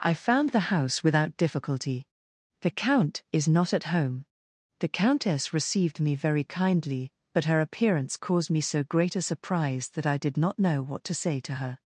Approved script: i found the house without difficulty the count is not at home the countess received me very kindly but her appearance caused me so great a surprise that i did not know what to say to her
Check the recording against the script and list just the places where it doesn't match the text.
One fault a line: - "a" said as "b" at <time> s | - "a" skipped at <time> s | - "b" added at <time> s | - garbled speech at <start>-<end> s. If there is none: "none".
none